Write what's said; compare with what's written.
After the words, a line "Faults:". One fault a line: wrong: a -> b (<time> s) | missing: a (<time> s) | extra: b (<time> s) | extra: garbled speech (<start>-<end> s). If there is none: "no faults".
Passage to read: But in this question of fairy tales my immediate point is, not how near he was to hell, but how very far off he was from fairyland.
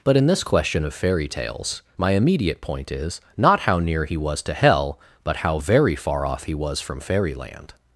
But in this question of fairy tales my immediate point is, not how near he was to hell, but how very far off he was from fairyland.
Faults:
no faults